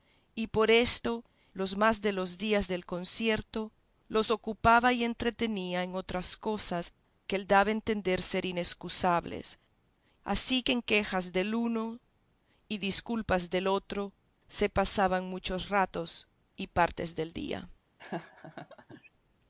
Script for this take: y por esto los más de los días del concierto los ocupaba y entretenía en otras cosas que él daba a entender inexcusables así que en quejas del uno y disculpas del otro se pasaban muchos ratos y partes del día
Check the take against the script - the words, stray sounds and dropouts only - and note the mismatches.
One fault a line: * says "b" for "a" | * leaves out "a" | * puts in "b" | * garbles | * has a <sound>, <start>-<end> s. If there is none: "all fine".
* puts in "ser"
* has a laugh, 18.0-19.1 s